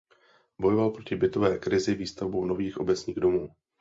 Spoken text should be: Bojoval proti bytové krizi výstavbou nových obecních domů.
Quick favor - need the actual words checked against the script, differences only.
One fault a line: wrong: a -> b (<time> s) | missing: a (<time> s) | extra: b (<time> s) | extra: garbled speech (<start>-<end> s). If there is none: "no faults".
no faults